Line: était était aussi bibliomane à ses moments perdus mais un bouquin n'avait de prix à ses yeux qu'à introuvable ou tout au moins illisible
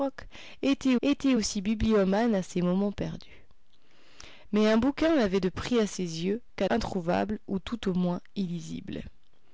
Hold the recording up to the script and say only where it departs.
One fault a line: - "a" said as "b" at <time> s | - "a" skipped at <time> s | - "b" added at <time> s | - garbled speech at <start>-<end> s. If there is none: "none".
none